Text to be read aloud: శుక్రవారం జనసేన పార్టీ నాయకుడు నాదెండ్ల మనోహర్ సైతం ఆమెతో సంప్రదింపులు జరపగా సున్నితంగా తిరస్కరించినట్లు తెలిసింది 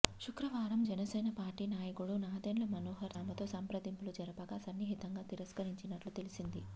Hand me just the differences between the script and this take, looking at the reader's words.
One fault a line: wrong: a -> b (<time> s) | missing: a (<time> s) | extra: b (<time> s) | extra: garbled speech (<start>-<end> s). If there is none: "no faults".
missing: సైతం (3.2 s)